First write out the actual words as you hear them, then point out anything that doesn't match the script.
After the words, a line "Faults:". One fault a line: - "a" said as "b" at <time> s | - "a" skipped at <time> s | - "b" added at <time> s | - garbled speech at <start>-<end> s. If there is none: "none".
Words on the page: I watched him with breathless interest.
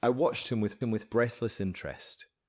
I watched him with him with breathless interest.
Faults:
- "him with" added at 0.8 s